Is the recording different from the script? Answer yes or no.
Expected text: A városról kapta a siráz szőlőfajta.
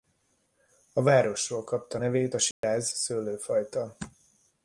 yes